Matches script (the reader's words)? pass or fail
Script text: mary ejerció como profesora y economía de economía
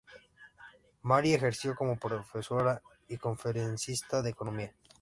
fail